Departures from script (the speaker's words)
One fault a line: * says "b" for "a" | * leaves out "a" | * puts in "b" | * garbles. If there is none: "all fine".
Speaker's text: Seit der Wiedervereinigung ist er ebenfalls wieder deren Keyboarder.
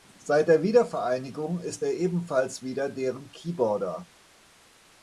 all fine